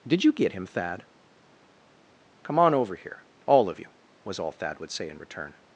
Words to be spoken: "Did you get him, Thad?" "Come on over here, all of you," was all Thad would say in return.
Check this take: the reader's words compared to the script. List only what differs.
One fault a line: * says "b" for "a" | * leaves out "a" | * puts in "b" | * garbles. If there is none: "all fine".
all fine